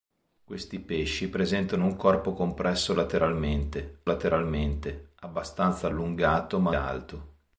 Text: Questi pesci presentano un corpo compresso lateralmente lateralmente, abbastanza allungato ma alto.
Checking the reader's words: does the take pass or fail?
pass